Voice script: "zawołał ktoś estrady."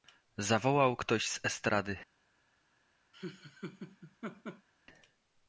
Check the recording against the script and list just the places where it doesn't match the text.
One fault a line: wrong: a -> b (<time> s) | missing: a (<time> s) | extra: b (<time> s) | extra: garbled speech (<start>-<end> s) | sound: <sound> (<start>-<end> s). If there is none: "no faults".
extra: z (1.3 s)
sound: laugh (3.1-4.7 s)